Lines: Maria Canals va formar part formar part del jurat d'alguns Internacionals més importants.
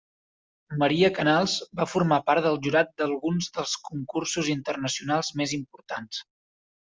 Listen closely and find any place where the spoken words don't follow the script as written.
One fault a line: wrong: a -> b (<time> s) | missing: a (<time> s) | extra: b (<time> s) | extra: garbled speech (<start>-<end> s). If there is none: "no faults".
missing: formar part (2.5 s)
extra: dels Concursos (3.6 s)